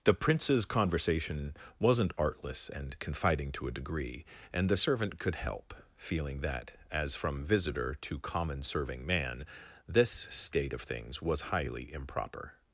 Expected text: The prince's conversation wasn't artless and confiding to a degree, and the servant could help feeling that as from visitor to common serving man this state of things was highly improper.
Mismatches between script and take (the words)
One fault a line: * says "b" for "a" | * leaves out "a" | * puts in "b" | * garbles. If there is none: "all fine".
all fine